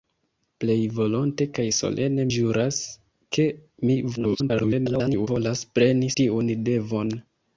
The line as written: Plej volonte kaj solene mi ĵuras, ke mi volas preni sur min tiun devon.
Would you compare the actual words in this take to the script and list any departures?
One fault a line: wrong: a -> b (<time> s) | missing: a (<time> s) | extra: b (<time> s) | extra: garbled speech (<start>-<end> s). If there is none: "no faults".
missing: mi (2.3 s)
extra: garbled speech (4.2-5.3 s)
missing: sur min (6.1 s)